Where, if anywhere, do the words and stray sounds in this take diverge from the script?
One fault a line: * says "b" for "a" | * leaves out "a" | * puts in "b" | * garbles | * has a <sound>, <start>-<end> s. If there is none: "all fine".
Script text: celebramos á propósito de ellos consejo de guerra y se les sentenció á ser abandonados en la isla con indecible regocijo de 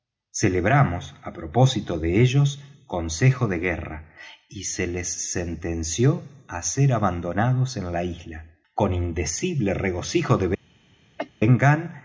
* has a cough, 11.2-11.3 s